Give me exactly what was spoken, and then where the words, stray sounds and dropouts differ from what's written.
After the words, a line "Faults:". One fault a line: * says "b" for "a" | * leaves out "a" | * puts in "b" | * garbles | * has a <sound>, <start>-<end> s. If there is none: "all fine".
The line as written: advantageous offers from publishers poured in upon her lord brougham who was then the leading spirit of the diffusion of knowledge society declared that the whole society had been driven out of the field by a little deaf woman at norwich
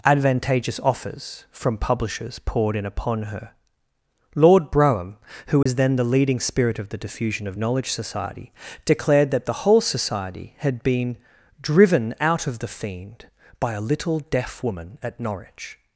advantageous offers from publishers poured in upon her lord brougham who was then the leading spirit of the diffusion of knowledge society declared that the whole society had been driven out of the fiend by a little deaf woman at norwich
Faults:
* has a dropout, 5.6-5.7 s
* says "fiend" for "field"